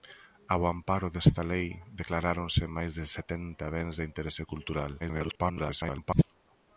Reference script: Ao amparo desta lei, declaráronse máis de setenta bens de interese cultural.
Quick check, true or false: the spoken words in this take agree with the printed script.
false